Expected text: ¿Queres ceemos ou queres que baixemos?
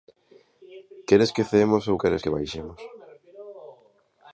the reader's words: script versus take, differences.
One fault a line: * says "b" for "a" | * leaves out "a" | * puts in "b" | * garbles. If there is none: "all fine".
* puts in "que"